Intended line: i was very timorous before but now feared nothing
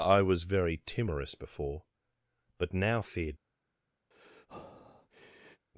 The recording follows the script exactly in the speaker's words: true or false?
false